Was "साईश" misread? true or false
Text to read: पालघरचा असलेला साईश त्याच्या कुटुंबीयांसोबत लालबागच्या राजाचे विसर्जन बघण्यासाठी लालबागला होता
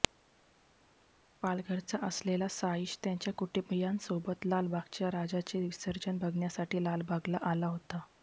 false